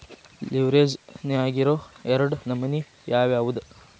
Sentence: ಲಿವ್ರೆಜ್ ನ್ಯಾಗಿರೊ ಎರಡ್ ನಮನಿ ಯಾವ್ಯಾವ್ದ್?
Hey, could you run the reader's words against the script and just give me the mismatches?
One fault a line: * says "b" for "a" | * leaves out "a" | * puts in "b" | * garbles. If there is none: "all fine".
all fine